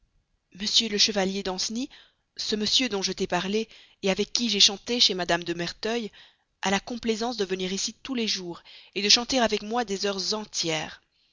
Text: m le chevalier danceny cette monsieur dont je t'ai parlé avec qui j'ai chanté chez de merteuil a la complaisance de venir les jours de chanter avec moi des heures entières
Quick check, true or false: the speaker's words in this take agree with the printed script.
false